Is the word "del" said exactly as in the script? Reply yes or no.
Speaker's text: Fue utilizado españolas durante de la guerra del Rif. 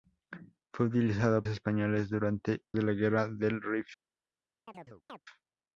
yes